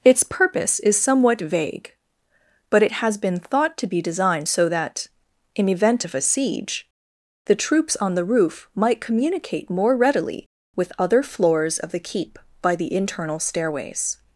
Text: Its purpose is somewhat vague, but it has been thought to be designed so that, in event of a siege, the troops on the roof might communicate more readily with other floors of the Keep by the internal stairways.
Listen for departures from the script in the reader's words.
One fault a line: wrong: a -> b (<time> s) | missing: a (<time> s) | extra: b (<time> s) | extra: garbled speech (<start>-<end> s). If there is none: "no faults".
no faults